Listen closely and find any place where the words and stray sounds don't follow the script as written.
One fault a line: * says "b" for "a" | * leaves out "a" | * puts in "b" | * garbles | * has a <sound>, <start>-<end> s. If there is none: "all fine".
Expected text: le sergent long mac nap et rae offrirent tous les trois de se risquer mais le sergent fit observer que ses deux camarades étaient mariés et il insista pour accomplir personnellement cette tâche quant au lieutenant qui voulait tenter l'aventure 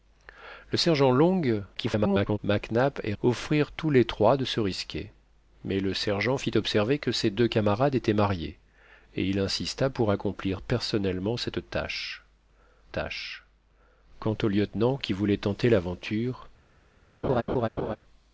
* garbles
* leaves out "rae"
* puts in "tâche"
* has a laugh, 17.2-18.0 s